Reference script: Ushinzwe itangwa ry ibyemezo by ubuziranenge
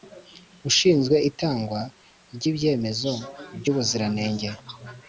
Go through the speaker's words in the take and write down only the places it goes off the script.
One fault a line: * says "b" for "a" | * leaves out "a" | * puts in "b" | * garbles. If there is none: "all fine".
all fine